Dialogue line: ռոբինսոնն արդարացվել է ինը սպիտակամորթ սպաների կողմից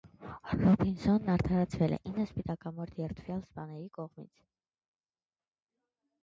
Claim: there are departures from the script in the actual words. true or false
true